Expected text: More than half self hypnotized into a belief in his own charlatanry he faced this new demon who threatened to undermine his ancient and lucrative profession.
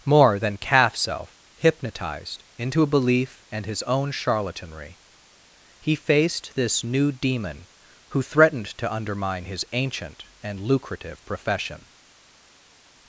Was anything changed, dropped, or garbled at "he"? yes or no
no